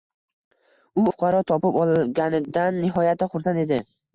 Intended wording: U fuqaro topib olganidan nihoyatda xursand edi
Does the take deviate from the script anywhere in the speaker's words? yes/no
no